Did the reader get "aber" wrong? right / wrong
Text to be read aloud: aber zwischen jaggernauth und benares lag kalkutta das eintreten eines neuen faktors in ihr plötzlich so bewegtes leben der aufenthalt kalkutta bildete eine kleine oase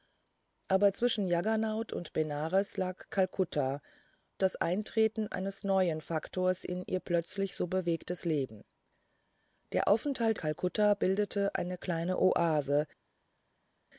right